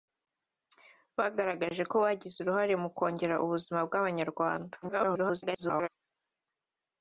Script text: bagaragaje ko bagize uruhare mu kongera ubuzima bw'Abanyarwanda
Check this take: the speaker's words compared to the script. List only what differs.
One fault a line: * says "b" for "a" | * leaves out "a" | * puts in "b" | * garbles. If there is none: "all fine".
* garbles